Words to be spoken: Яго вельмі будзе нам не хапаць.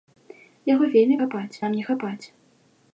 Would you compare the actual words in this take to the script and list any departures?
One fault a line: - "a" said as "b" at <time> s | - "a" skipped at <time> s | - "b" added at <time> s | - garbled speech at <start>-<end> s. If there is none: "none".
- "будзе" said as "хапаць" at 1.2 s